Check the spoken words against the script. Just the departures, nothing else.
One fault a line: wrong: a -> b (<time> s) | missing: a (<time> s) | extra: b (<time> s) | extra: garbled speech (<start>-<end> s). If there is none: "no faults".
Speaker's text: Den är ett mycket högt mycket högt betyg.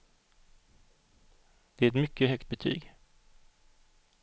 wrong: Den -> Det (1.8 s)
missing: mycket högt (2.5 s)